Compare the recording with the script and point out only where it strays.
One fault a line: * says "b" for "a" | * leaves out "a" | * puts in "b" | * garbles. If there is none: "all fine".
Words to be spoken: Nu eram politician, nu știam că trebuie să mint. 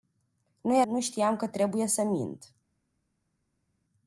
* leaves out "eram politician"